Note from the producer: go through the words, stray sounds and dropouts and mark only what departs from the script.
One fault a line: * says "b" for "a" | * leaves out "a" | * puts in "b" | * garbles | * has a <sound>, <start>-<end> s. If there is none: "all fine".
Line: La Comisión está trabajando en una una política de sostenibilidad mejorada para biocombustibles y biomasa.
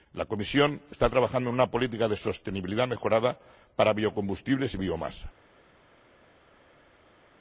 * leaves out "una"